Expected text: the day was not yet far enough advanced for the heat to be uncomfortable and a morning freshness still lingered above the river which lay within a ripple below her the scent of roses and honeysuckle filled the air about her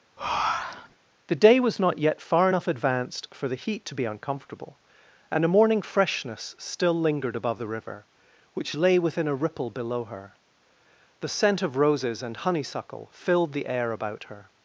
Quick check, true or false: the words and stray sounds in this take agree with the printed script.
false